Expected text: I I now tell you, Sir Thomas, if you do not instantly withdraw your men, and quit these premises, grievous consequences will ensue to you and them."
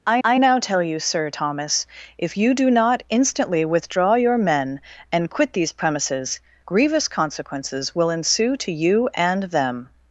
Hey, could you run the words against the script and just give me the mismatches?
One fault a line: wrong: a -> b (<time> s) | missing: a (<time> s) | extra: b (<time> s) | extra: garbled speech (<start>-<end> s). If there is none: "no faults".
no faults